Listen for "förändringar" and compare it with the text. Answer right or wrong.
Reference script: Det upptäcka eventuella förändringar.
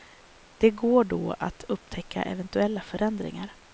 right